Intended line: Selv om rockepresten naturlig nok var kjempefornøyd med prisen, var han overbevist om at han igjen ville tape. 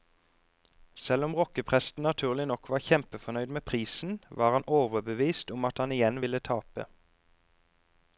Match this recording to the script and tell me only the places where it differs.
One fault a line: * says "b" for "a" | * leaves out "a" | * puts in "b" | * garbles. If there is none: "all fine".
all fine